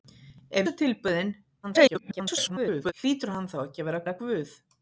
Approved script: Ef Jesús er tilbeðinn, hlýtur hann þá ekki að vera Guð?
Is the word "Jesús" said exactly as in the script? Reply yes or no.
no